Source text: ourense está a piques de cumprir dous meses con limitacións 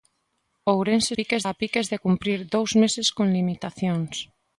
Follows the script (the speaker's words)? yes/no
no